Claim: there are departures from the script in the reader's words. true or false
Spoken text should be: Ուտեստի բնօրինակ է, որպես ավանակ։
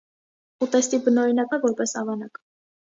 false